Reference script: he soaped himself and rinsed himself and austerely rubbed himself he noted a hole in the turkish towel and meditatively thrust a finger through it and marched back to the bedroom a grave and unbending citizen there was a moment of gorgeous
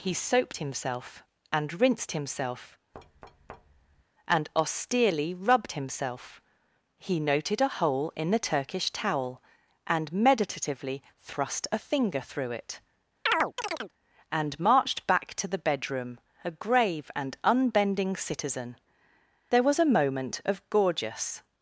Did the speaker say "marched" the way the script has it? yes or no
yes